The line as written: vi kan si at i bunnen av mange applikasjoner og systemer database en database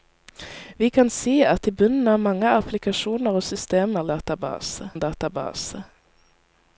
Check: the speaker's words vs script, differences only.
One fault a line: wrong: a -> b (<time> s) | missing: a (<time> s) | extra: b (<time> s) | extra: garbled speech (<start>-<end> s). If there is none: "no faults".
no faults